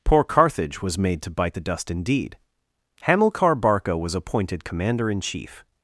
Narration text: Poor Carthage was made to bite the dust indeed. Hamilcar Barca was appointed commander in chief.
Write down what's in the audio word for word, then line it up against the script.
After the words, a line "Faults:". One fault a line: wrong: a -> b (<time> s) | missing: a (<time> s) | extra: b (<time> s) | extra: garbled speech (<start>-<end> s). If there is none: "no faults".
Poor Carthage was made to bite the dust indeed. Hamilcar Barca was appointed commander in chief.
Faults:
no faults